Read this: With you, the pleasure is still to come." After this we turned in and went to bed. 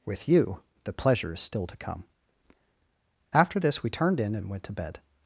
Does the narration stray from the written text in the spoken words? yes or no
no